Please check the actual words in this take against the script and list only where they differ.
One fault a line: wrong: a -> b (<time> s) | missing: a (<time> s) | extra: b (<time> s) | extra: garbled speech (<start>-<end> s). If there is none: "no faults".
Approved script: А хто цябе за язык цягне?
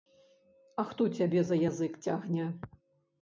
no faults